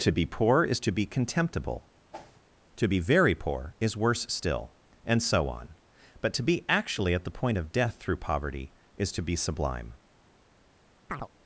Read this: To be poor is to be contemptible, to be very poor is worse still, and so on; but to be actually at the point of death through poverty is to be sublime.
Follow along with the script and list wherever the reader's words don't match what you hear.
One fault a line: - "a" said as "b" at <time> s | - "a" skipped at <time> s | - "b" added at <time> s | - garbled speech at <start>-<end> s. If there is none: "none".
none